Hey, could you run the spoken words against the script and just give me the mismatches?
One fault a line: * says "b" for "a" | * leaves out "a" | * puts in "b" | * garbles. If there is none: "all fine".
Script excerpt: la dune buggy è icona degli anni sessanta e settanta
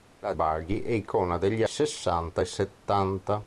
* leaves out "dune"
* leaves out "anni"